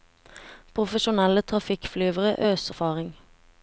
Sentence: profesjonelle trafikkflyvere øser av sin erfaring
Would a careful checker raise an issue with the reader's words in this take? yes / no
yes